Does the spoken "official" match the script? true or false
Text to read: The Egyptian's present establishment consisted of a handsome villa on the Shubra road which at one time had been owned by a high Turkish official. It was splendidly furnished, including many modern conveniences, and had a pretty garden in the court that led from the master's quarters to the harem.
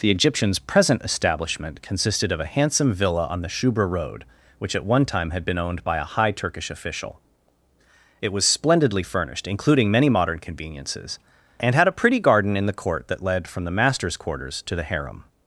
true